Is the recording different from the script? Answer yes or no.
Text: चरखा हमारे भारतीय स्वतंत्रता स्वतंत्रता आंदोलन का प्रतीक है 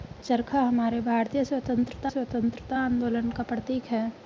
no